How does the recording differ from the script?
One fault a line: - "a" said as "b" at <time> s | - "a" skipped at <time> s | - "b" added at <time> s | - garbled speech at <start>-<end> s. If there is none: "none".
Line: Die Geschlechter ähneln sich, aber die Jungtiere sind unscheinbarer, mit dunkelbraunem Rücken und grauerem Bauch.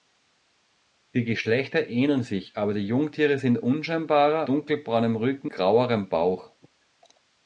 - "mit" skipped at 4.5 s
- "und" skipped at 5.5 s